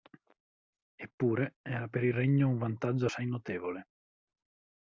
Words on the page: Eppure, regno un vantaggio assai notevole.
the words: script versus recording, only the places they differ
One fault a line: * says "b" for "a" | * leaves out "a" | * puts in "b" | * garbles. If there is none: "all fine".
* puts in "era per il"